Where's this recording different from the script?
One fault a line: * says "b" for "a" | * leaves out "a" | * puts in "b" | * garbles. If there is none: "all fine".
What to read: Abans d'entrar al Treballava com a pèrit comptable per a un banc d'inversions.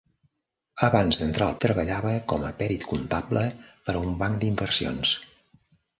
all fine